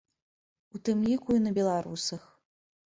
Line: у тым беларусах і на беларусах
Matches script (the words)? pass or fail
fail